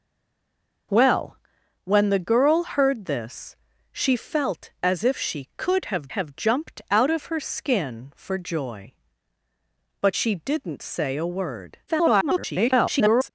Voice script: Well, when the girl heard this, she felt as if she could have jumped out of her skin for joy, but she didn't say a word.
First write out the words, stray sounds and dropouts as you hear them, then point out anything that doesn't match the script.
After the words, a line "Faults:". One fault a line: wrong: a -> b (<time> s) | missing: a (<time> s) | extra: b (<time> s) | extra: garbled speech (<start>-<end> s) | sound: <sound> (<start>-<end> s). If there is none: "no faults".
Well, when the girl heard this, she felt as if she could have have jumped out of her skin for joy, but she didn't say a word. [garbled]
Faults:
extra: have (6.1 s)
extra: garbled speech (11.9-13.3 s)